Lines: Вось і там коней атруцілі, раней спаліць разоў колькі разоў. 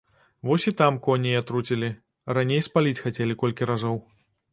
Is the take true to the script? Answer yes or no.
no